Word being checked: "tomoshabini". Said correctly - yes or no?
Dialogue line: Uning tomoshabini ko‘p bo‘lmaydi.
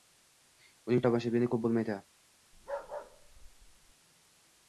yes